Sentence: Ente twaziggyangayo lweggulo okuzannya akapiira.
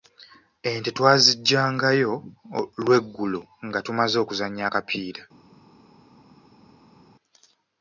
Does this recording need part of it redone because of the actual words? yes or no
yes